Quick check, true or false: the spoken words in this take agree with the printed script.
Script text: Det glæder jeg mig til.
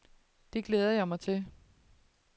true